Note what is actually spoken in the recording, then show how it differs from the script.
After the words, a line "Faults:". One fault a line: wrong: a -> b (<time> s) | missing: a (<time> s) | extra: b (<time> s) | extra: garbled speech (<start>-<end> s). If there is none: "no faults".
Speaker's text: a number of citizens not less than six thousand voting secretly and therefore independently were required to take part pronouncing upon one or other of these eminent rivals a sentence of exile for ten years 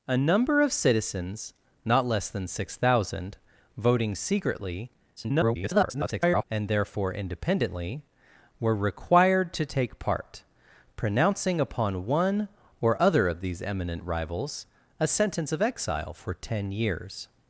a number of citizens not less than six thousand voting secretly [garbled] and therefore independently were required to take part pronouncing upon one or other of these eminent rivals a sentence of exile for ten years
Faults:
extra: garbled speech (5.2-6.4 s)